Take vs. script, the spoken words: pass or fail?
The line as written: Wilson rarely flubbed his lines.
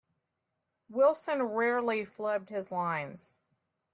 pass